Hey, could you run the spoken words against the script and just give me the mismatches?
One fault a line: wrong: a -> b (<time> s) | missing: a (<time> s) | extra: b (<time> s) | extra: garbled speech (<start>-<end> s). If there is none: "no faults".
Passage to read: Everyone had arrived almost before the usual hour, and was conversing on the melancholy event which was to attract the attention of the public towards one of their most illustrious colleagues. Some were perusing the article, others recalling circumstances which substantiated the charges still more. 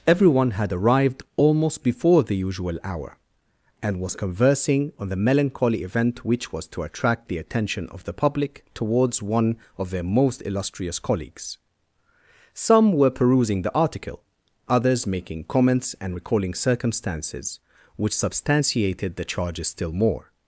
extra: making comments and (15.1 s)